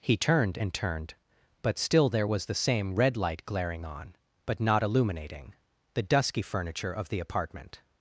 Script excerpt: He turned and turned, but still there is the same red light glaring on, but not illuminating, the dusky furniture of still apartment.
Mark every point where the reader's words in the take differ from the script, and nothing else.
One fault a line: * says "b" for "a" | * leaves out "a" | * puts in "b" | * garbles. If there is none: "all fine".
* says "was" for "is"
* says "the" for "still"